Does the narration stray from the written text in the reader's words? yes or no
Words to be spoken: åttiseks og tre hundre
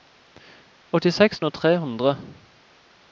no